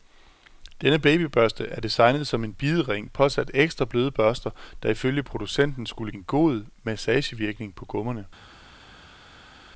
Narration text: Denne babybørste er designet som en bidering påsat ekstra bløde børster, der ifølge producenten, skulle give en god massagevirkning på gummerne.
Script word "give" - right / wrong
wrong